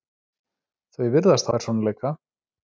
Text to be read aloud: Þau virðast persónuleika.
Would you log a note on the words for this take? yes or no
no